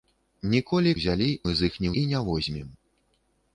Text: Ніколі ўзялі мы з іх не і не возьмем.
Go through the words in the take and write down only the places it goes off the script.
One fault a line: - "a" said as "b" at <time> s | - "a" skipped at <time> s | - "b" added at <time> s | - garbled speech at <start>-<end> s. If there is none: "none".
none